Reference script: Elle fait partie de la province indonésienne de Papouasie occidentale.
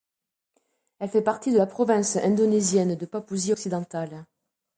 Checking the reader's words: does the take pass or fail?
pass